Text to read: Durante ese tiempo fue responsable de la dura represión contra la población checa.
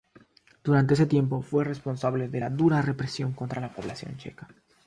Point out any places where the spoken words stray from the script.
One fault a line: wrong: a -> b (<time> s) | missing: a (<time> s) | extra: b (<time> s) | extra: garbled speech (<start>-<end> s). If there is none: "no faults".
no faults